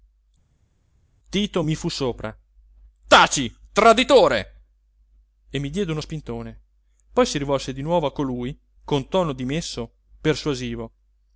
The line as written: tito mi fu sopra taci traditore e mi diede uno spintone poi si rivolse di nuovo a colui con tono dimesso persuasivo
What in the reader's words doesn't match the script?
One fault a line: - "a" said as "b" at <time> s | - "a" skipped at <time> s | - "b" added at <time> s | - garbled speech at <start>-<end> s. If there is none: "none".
none